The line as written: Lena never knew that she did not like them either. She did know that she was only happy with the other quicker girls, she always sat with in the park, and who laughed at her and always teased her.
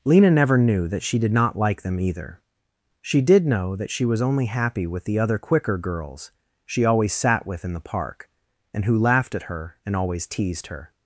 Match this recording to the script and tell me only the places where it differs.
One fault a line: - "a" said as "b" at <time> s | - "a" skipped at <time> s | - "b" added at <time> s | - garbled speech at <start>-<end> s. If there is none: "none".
none